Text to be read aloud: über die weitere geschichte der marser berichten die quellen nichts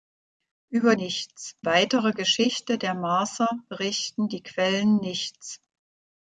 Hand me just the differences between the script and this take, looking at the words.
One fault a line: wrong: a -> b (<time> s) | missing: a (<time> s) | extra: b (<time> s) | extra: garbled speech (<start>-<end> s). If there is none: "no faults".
wrong: die -> nichts (0.9 s)